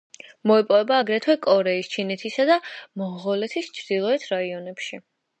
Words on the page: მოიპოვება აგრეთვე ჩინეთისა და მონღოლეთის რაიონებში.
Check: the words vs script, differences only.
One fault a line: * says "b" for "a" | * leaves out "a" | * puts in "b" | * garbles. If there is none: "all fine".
* puts in "კორეის"
* puts in "ჩრდილოეთ"